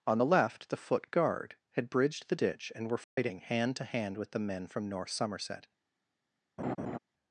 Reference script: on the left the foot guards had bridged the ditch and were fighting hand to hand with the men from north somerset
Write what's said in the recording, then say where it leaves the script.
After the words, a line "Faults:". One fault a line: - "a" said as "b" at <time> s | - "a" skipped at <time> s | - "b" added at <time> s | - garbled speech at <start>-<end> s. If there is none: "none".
on the left the foot guard had bridged the ditch and were fighting hand to hand with the men from north somerset
Faults:
- "guards" said as "guard" at 1.1 s